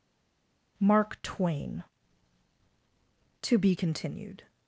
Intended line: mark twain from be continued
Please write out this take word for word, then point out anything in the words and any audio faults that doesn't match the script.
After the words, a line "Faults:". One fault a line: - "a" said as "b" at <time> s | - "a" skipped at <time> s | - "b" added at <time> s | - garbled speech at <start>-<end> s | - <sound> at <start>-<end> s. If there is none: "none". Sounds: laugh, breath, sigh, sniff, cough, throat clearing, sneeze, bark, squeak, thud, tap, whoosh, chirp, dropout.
mark twain to be continued
Faults:
- "from" said as "to" at 3.4 s